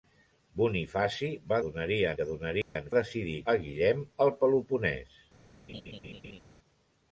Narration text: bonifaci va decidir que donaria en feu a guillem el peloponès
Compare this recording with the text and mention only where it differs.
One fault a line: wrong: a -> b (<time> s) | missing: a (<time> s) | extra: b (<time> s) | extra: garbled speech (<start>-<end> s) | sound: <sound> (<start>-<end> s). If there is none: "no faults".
wrong: decidir -> donaria (1.6 s)
sound: dropout (2.6-2.8 s)
wrong: feu -> decidir (3.0 s)
sound: laugh (5.7-6.4 s)